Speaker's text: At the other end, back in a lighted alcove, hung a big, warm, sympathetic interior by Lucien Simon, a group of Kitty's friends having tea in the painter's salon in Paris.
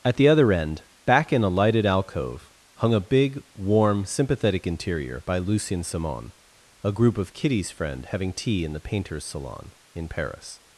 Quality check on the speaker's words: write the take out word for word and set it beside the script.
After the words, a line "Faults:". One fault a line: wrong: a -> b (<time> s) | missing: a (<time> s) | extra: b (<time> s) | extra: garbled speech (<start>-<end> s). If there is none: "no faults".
At the other end, back in a lighted alcove, hung a big, warm, sympathetic interior by Lucien Simon, a group of Kitty's friend having tea in the painter's salon in Paris.
Faults:
wrong: friends -> friend (7.7 s)